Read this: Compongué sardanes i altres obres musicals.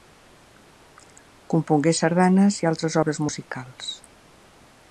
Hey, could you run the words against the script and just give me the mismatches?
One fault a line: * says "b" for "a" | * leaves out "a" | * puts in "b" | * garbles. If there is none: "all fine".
all fine